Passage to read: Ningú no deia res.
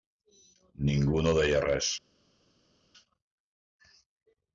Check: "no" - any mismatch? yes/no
no